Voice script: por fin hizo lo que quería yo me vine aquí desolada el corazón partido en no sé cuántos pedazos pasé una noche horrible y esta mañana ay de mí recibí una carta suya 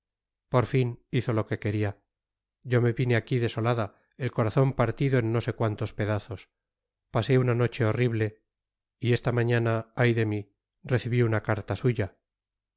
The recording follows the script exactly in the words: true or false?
true